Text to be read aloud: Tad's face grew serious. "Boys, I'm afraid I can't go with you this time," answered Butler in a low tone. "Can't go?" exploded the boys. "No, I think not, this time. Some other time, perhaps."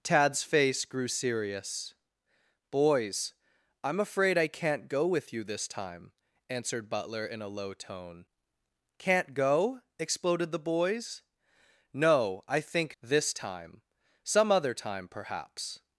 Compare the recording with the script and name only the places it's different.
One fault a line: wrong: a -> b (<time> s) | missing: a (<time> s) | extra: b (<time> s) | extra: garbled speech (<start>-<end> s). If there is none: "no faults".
missing: not (12.9 s)